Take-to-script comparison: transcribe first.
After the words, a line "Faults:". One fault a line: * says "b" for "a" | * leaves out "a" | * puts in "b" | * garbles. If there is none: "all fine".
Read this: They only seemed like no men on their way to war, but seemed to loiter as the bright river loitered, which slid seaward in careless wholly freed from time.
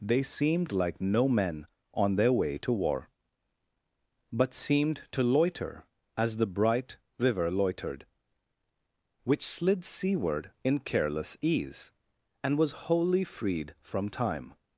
They seemed like no men on their way to war, but seemed to loiter as the bright river loitered, which slid seaward in careless ease and was wholly freed from time.
Faults:
* leaves out "only"
* puts in "ease and was"